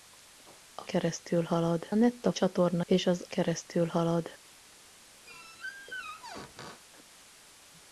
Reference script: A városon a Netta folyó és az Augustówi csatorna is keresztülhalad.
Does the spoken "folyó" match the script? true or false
false